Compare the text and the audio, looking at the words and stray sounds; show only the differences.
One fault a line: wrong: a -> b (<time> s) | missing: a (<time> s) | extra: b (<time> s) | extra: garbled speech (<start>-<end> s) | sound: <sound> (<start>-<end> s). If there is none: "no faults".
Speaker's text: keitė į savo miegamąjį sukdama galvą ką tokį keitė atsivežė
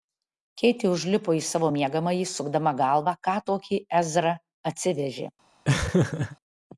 extra: užlipo (0.9 s)
wrong: keitė -> ezra (4.0 s)
sound: laugh (5.6-6.4 s)